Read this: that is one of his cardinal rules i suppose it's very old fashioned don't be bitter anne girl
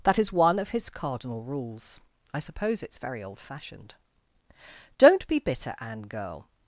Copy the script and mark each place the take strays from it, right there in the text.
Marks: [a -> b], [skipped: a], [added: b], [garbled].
that is one of his cardinal rules i suppose it's very old fashioned don't be bitter anne girl